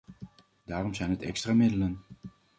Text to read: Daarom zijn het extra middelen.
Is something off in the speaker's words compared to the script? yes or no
no